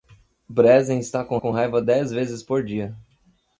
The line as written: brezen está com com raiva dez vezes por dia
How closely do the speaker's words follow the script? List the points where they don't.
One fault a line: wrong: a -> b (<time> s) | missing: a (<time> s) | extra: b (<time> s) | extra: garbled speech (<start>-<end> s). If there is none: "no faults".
no faults